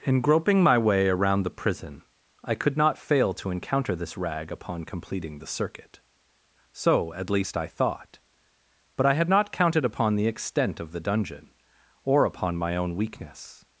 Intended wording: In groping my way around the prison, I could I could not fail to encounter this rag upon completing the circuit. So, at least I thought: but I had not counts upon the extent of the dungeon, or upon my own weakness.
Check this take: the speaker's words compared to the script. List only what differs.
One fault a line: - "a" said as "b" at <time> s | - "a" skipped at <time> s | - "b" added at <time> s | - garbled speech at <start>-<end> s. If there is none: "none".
- "I could" skipped at 2.8 s
- "counts" said as "counted" at 9.5 s